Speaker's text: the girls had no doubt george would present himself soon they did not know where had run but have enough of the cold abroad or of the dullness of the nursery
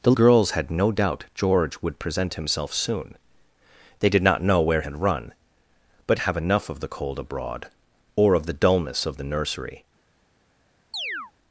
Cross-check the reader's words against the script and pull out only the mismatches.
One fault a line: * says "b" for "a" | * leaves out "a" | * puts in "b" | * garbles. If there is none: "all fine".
all fine